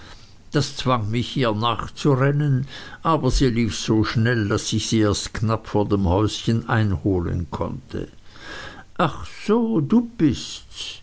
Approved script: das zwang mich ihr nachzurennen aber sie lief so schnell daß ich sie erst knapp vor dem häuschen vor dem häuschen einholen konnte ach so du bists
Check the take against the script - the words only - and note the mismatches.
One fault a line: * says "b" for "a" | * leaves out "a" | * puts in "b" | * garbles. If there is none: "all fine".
* leaves out "vor dem häuschen"